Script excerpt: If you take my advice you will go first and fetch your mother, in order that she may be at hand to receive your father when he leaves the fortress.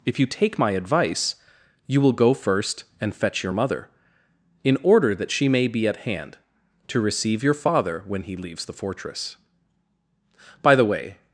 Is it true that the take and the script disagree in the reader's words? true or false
true